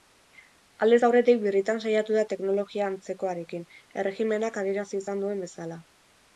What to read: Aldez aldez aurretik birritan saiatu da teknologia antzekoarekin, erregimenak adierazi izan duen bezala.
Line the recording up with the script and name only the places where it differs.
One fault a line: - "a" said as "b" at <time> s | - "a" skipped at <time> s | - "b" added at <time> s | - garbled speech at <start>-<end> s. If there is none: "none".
- "aldez" skipped at 1.0 s